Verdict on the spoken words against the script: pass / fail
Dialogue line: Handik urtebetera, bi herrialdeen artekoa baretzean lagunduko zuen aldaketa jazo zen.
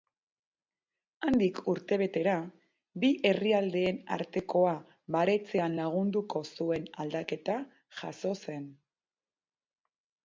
pass